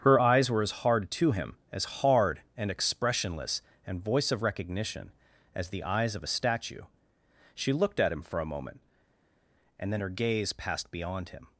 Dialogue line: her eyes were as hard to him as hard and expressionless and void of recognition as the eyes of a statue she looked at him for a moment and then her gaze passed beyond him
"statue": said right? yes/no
yes